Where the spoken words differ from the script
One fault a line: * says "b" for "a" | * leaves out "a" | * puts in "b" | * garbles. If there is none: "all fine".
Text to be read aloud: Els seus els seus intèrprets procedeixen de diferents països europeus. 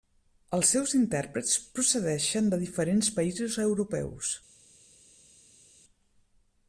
* leaves out "els seus"